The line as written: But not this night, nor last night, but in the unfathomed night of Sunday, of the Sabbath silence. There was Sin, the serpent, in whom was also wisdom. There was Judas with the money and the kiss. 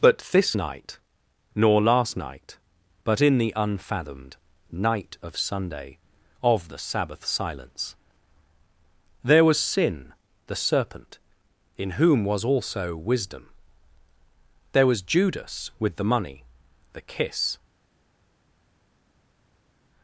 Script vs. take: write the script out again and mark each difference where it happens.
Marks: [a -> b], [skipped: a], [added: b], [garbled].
But [skipped: not] this night, nor last night, but in the unfathomed night of Sunday, of the Sabbath silence. There was Sin, the serpent, in whom was also wisdom. There was Judas with the money [skipped: and] the kiss.